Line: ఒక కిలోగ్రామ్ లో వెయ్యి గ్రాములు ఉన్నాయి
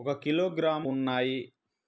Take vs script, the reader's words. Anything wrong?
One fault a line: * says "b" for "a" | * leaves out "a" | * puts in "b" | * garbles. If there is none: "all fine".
* leaves out "లో వెయ్యి గ్రాములు"